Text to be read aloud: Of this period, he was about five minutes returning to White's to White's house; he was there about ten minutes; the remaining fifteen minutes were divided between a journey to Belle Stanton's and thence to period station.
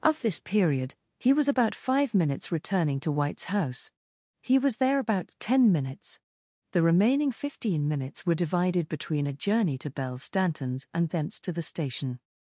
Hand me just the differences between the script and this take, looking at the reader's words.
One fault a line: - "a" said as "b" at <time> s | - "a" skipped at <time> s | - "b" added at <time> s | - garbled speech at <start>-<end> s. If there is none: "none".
- "to White's" skipped at 3.5 s
- "period" said as "the" at 11.5 s